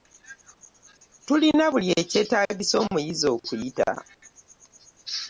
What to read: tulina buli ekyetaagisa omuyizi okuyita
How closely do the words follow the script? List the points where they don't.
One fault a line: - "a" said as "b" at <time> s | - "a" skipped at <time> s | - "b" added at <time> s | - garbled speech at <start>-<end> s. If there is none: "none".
none